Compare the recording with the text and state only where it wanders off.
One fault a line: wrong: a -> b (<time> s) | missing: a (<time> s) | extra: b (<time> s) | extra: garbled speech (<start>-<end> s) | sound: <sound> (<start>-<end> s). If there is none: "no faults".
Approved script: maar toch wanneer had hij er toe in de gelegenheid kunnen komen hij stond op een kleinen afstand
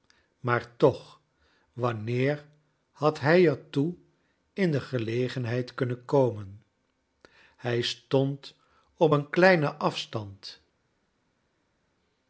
no faults